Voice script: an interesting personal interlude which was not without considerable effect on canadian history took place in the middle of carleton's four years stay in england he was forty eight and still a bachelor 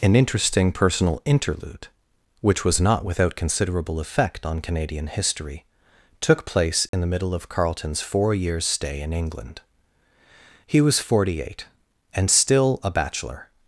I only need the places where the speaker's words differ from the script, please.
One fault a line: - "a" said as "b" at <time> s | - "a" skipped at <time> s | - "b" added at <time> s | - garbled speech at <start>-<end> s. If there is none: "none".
none